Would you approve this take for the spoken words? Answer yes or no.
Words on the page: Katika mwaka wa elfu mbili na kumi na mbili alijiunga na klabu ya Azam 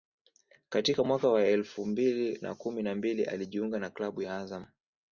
yes